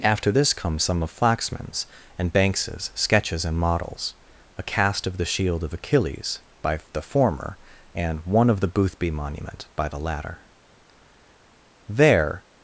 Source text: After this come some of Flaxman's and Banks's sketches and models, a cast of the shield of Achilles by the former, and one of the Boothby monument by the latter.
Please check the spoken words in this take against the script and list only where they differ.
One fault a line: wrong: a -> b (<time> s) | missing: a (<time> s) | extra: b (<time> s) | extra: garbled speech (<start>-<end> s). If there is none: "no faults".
extra: There (11.9 s)